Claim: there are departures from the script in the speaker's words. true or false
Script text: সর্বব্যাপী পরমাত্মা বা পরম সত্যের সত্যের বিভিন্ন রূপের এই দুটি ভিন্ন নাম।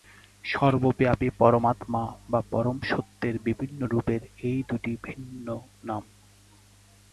true